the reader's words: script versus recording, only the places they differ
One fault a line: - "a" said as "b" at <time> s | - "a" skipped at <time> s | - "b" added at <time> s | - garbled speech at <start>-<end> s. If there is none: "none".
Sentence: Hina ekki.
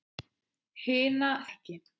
none